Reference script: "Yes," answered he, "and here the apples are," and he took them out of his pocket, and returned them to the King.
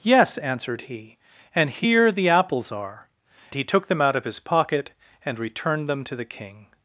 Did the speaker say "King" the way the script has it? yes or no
yes